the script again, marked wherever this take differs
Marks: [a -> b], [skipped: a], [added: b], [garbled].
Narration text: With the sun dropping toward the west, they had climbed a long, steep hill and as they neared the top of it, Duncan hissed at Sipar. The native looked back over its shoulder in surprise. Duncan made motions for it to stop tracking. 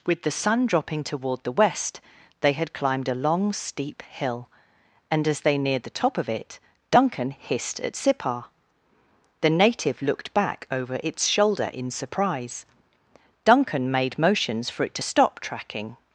With the sun dropping toward the west, they had climbed a long, steep hill and as they neared the top of it, Duncan hissed at Sipar. The native looked back over its shoulder in surprise. Duncan made motions for it to stop tracking.